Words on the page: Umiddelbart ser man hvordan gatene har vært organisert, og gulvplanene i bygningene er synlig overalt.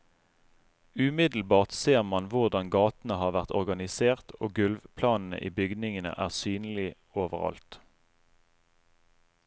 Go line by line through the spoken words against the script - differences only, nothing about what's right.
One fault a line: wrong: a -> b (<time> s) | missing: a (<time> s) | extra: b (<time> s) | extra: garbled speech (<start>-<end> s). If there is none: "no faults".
no faults